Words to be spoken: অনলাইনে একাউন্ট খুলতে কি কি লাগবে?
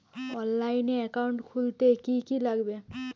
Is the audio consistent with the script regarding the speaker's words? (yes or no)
yes